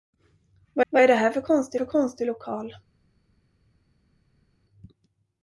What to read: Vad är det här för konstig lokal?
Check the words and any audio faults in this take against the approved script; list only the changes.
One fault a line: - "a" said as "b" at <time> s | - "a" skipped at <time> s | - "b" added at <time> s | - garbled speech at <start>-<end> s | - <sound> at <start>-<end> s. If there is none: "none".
- "vad" added at 0.9 s
- "för konstig" added at 1.7 s